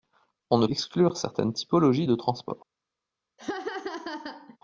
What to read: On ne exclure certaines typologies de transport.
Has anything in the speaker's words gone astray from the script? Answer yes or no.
no